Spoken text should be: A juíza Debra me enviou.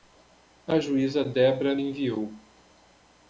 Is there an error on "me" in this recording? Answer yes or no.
yes